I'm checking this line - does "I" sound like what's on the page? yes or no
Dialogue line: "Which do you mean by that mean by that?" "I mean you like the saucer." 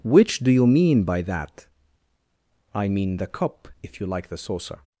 no